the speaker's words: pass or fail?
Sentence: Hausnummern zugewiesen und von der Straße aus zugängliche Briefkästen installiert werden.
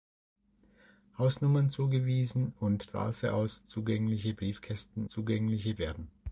fail